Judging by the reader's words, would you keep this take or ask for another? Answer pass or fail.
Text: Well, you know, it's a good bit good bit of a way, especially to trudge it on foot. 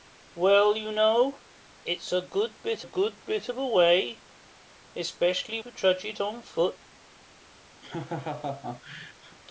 pass